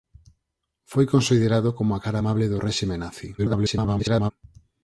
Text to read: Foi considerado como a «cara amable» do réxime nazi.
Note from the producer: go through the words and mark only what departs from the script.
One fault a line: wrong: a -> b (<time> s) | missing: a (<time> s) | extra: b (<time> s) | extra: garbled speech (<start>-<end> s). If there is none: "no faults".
extra: garbled speech (3.4-4.3 s)